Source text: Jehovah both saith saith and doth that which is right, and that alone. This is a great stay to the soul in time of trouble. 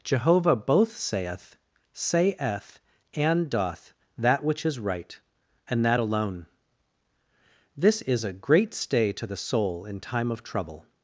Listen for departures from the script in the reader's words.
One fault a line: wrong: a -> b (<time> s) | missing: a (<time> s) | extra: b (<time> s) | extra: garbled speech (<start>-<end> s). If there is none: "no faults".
no faults